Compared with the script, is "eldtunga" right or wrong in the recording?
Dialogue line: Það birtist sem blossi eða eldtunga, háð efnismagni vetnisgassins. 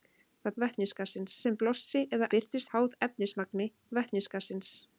wrong